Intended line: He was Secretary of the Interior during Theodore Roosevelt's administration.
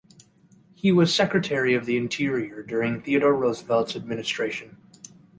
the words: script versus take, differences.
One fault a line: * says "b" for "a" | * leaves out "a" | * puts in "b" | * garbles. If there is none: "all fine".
all fine